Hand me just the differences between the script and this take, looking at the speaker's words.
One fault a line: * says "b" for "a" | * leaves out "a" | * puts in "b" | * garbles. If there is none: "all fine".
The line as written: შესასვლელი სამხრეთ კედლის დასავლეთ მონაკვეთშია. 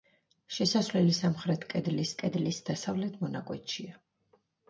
* puts in "კედლის"